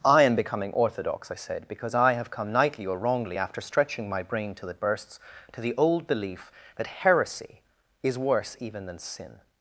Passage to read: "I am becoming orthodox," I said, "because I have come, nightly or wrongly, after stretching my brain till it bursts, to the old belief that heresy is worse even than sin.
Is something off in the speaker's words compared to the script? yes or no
no